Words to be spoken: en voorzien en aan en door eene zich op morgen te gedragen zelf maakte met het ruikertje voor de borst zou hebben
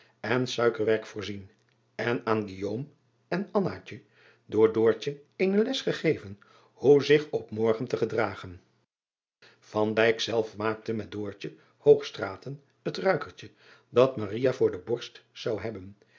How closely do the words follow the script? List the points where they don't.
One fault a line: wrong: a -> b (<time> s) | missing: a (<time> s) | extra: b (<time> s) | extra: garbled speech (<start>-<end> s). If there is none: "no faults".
extra: suikerwerk (0.5 s)
extra: les gegeven hoe (5.6 s)
extra: dat (13.9 s)